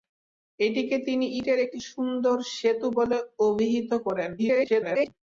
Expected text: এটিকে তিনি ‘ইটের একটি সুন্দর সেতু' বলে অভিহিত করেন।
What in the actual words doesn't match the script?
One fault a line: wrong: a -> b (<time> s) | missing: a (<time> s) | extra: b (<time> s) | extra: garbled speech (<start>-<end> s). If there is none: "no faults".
extra: garbled speech (4.4-5.1 s)